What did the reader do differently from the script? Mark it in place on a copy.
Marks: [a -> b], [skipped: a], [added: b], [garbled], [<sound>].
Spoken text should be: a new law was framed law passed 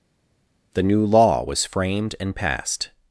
[a -> the] new law was framed [law -> and] passed